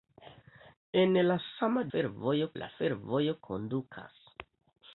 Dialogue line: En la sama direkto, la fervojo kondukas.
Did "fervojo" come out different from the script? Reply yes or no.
no